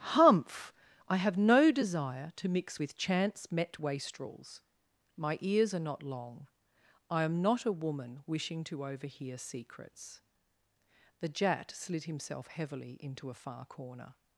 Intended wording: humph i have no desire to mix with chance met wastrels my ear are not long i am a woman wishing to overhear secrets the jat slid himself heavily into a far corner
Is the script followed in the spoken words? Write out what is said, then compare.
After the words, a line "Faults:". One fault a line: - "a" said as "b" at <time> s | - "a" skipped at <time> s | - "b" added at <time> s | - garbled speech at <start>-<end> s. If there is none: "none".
humph i have no desire to mix with chance met wastrels my ears are not long i am not a woman wishing to overhear secrets the jat slid himself heavily into a far corner
Faults:
- "ear" said as "ears" at 5.4 s
- "not" added at 7.4 s